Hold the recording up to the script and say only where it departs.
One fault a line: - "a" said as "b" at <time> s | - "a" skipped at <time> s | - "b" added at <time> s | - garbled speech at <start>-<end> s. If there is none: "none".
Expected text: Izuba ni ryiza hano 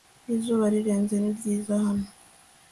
- "rirenze" added at 0.7 s